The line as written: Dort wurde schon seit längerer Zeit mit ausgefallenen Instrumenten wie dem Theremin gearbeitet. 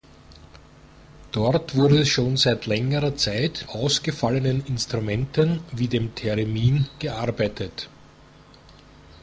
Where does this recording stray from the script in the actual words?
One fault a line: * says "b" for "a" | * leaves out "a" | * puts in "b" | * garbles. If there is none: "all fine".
* leaves out "mit"